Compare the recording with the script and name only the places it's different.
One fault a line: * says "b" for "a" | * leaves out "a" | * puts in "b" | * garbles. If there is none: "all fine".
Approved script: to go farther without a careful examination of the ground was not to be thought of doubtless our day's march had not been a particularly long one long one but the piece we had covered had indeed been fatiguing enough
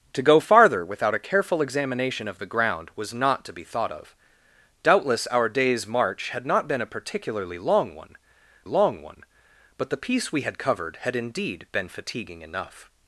all fine